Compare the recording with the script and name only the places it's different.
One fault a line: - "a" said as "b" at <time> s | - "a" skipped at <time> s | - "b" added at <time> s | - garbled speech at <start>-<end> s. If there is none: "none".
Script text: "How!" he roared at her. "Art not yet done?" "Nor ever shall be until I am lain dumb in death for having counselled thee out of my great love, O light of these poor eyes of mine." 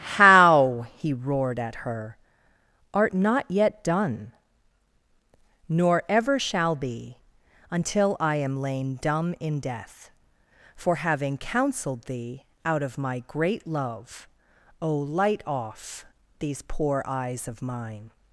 - "of" said as "off" at 15.5 s